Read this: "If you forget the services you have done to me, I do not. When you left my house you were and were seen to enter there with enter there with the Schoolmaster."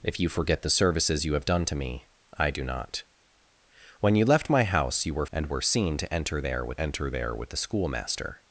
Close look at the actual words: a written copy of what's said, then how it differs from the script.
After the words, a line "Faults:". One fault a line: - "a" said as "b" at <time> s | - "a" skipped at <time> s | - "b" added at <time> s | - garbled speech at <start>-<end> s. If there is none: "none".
"If you forget the services you have done to me, I do not. When you left my house you were and were seen to enter there with enter there with the Schoolmaster."
Faults:
none